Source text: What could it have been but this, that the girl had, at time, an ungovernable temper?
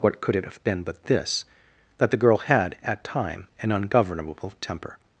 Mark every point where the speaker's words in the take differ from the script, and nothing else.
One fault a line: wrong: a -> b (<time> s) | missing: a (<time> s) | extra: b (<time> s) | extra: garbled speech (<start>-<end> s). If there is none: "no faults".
no faults